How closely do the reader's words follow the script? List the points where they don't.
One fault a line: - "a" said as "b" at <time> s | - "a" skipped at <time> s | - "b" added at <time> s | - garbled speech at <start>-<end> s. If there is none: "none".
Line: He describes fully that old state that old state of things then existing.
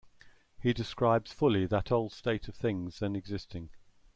- "that old state" skipped at 2.5 s